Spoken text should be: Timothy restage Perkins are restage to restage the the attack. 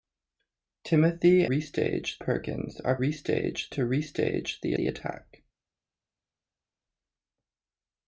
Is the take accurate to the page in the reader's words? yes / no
yes